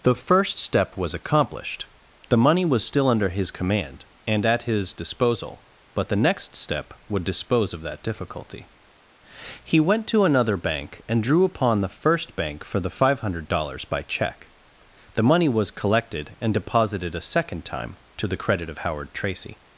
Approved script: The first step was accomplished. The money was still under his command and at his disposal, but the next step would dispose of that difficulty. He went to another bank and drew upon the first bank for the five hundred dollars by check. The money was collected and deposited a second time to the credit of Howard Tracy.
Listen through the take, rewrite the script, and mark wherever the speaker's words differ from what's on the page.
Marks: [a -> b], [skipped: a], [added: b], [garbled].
The first step was accomplished. The money was still under his command and at his disposal, but the next step would dispose of that difficulty. He went to another bank and drew upon the first bank for the five hundred dollars by check. The money was collected and deposited a second time to the credit of Howard Tracy.